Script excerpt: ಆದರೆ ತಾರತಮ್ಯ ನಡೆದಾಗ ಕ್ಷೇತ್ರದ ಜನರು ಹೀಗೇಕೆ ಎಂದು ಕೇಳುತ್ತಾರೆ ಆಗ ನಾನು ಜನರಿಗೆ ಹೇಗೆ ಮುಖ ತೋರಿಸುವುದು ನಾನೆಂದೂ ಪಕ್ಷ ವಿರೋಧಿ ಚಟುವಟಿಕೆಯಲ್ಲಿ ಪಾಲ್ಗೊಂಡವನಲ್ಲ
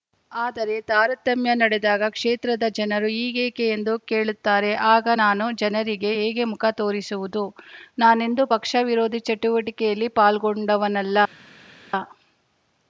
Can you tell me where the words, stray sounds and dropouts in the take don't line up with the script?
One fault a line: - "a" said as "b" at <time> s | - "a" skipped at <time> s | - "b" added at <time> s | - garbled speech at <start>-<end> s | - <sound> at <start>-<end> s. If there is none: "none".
none